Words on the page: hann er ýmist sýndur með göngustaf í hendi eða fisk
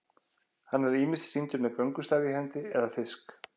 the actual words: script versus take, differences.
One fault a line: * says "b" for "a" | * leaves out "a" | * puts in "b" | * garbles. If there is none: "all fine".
all fine